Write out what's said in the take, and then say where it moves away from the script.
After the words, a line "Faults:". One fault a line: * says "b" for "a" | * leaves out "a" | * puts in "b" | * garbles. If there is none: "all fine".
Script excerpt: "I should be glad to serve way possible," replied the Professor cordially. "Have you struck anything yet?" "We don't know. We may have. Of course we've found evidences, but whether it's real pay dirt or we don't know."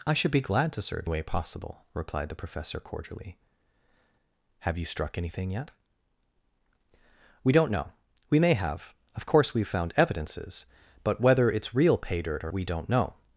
"I should be glad to serve way possible," replied the Professor cordially. "Have you struck anything yet?" "We don't know. We may have. Of course we've found evidences, but whether it's real pay dirt or we don't know."
Faults:
all fine